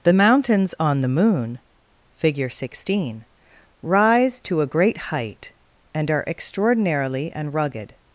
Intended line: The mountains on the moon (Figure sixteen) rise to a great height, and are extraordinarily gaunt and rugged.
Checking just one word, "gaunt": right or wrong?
wrong